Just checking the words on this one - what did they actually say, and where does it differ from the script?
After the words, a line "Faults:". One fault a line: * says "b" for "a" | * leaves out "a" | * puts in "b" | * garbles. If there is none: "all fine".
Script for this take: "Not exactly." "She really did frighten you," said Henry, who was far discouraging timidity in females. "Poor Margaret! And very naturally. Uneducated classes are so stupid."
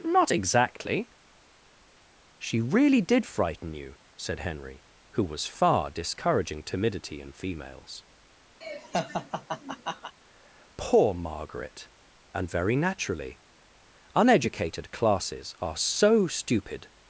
"Not exactly." "She really did frighten you," said Henry, who was far discouraging timidity in females. "Poor Margaret! And very naturally. Uneducated classes are so stupid."
Faults:
all fine